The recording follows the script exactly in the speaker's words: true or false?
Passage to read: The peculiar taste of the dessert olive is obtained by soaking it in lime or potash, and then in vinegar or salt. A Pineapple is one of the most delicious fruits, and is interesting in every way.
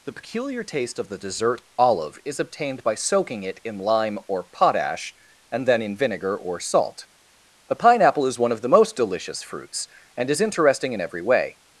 true